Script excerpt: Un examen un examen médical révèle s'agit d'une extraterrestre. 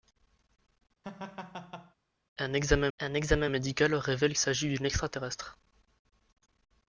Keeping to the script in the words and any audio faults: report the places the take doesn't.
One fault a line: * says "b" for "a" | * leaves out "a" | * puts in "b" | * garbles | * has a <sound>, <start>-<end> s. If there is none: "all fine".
* has a laugh, 1.0-1.9 s